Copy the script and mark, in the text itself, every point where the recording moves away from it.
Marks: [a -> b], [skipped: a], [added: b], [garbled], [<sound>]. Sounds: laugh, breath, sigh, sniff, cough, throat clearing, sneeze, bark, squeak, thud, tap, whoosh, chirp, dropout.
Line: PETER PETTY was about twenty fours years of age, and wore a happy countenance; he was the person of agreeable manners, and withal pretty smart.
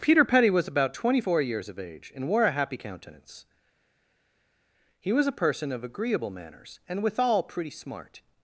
PETER PETTY was about twenty [fours -> four] years of age, and wore a happy countenance; he was [the -> a] person of agreeable manners, and withal pretty smart.